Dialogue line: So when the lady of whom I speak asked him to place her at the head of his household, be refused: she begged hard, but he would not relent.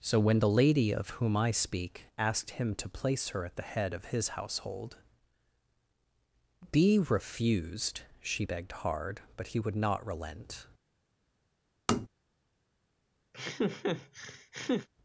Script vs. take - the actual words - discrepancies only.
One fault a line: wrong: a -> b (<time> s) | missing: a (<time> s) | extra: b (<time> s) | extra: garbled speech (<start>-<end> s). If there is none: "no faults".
no faults